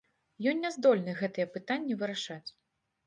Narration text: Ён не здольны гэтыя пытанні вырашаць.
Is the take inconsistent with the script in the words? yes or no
no